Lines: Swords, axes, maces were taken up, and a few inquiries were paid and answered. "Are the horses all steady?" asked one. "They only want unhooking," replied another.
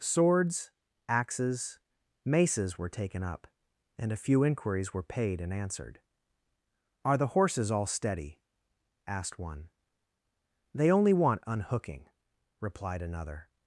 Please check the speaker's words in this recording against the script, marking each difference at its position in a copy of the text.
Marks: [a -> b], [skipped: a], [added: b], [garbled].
Swords, axes, maces were taken up, and a few inquiries were paid and answered. "Are the horses all steady?" asked one. "They only want unhooking," replied another.